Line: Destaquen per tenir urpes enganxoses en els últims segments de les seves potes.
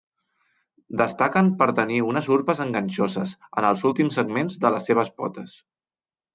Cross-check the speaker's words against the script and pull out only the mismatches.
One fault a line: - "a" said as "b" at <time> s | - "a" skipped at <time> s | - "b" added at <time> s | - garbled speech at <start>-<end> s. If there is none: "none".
- "unes" added at 2.1 s